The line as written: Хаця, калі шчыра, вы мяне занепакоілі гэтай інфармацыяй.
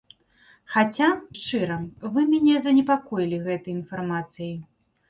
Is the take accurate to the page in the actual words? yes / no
no